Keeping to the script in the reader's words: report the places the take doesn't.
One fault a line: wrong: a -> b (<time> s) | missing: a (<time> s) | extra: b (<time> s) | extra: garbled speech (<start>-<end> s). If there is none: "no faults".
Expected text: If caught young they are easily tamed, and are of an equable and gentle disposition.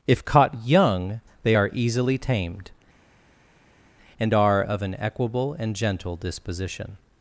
no faults